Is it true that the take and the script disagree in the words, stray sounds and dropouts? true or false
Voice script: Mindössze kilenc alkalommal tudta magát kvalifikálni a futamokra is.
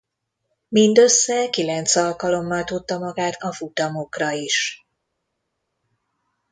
true